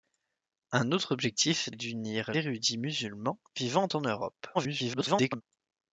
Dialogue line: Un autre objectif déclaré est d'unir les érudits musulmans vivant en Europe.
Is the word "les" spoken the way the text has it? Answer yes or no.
no